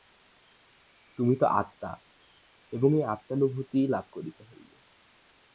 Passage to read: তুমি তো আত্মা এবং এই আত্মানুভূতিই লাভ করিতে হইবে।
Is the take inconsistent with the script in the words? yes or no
no